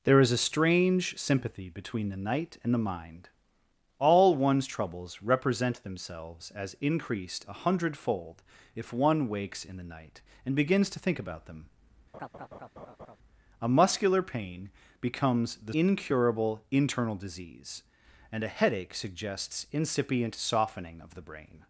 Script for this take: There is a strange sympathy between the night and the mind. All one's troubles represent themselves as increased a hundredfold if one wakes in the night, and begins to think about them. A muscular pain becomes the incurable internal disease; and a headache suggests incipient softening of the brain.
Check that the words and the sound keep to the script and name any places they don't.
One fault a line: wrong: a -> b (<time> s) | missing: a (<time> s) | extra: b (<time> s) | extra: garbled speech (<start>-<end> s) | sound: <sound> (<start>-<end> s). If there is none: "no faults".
sound: laugh (12.1-13.2 s)